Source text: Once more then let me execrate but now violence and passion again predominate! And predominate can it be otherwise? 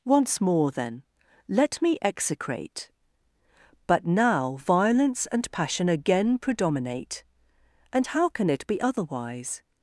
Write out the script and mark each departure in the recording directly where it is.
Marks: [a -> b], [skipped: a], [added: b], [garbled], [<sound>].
Once more then let me execrate but now violence and passion again predominate! And [predominate -> how] can it be otherwise?